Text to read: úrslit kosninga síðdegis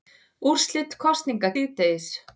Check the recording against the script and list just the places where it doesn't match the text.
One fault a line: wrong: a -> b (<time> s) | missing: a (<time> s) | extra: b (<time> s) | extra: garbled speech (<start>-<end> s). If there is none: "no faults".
no faults